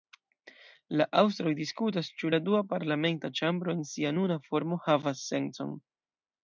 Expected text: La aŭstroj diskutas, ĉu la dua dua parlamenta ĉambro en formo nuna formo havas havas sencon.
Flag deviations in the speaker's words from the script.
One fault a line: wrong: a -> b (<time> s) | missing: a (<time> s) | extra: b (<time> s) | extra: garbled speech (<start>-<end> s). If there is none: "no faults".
missing: dua (2.6 s)
wrong: formo -> sia (3.9 s)
missing: havas (5.3 s)